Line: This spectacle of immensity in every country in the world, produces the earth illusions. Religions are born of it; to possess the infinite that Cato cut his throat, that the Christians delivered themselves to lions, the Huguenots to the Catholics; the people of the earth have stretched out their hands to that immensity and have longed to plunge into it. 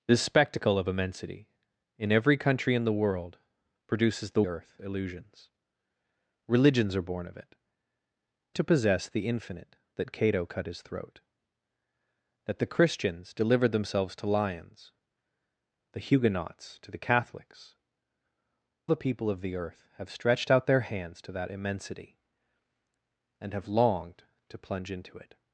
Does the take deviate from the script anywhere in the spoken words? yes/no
no